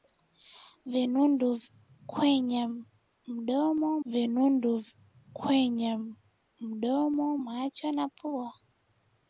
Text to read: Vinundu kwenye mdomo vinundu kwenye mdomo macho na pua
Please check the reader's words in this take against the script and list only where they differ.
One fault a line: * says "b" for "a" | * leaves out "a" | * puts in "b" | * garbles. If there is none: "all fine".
all fine